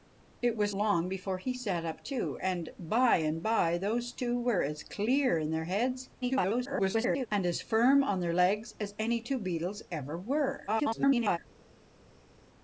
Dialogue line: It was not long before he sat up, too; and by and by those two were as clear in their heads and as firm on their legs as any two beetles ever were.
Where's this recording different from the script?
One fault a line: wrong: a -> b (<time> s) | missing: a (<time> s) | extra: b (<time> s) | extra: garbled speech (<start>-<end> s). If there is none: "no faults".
missing: not (0.7 s)
extra: garbled speech (6.2-7.3 s)
extra: garbled speech (10.7-11.4 s)